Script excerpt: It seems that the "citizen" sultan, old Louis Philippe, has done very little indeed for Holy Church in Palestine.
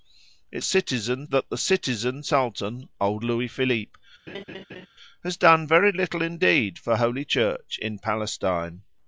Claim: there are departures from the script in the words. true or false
true